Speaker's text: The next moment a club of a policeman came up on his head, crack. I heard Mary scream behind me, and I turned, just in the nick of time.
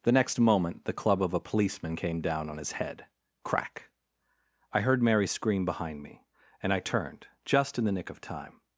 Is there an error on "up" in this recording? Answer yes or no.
yes